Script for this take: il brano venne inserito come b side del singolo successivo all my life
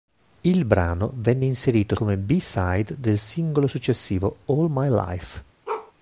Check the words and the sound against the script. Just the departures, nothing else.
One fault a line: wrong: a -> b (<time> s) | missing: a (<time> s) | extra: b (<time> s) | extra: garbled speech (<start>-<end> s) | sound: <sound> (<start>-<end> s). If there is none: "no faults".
sound: bark (5.7-5.9 s)